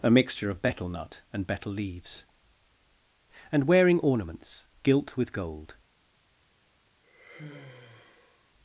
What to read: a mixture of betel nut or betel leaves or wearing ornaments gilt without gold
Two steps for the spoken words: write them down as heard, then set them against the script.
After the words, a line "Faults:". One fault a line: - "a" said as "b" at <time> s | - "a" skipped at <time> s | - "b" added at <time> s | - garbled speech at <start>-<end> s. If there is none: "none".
a mixture of betel nut and betel leaves and wearing ornaments gilt with gold
Faults:
- "or" said as "and" at 1.3 s
- "or" said as "and" at 3.5 s
- "without" said as "with" at 5.2 s